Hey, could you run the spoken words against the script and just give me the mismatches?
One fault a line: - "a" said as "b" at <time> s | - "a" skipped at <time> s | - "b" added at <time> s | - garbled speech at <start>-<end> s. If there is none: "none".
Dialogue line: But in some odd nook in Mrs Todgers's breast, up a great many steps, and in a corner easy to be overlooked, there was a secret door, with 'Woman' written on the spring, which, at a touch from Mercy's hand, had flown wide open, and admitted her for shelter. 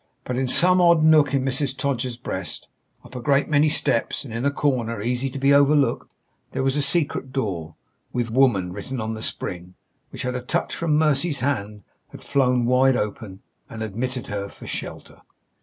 none